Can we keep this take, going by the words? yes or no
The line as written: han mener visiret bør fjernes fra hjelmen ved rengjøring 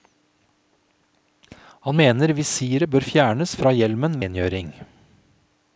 no